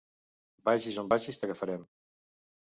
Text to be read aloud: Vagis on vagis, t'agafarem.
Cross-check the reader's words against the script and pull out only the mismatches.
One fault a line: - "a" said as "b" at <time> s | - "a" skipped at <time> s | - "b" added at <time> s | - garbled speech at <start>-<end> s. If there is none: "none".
none